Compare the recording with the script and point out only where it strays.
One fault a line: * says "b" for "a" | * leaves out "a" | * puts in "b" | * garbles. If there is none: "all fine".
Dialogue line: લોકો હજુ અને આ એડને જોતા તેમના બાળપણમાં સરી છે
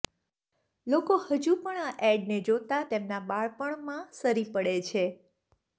* says "પણ" for "અને"
* puts in "પડે"